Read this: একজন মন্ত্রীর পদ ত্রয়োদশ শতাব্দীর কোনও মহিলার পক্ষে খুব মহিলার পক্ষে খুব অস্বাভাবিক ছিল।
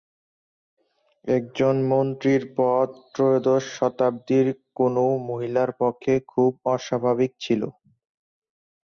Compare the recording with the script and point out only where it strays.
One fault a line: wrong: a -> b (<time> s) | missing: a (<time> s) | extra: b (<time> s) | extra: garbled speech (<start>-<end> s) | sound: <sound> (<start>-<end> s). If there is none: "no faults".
missing: মহিলার পক্ষে খুব (6.5 s)